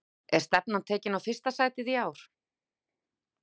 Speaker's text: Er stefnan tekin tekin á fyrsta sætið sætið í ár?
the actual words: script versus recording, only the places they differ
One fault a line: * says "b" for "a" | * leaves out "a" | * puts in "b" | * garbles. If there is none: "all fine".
* leaves out "tekin"
* leaves out "sætið"